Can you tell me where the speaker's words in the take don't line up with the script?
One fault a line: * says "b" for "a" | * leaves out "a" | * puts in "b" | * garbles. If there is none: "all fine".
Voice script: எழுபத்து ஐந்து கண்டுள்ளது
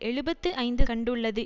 all fine